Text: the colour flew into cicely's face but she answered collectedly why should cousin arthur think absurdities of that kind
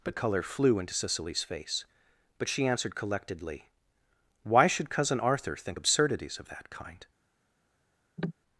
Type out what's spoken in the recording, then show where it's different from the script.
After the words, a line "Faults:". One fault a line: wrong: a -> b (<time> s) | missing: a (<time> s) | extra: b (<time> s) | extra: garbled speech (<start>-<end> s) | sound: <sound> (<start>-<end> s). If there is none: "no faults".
but color flew into cicely's face but she answered collectedly why should cousin arthur think absurdities of that kind
Faults:
wrong: the colour -> but color (0.0 s)
sound: cough (8.2-8.3 s)